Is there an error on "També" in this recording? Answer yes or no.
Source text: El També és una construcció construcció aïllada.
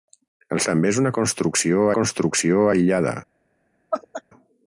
no